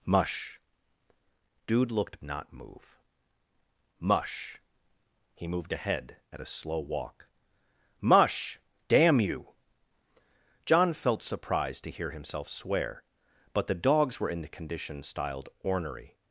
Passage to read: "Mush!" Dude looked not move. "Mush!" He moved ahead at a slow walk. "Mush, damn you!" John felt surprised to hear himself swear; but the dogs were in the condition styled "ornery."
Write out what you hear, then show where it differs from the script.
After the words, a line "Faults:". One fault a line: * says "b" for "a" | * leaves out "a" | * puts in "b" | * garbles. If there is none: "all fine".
"Mush!" Dude looked not move. "Mush!" He moved ahead at a slow walk. "Mush, damn you!" John felt surprised to hear himself swear; but the dogs were in the condition styled "ornery."
Faults:
all fine